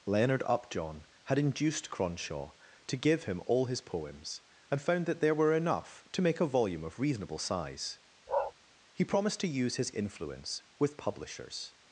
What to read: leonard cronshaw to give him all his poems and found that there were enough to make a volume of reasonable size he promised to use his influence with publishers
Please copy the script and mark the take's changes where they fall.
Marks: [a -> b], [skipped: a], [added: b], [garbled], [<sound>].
leonard [added: upjohn had induced] cronshaw to give him all his poems and found that there were enough to make a volume of reasonable size [bark] he promised to use his influence with publishers